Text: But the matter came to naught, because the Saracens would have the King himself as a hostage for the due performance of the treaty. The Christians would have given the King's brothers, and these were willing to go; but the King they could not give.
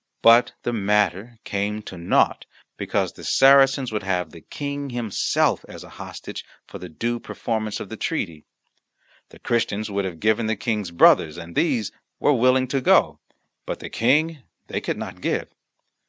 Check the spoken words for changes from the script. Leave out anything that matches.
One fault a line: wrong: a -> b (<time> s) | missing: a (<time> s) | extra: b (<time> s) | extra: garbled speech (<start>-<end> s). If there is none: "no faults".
no faults